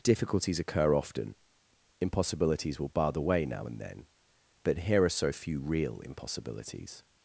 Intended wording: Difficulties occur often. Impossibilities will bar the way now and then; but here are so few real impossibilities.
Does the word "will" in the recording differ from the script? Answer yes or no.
no